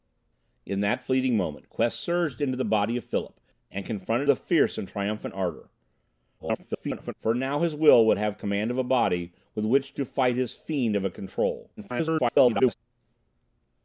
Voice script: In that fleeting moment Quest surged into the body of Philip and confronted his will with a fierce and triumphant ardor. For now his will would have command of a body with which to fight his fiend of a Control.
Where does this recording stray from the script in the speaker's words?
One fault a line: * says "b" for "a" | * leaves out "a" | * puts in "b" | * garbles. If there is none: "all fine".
* leaves out "his will with"
* garbles
* garbles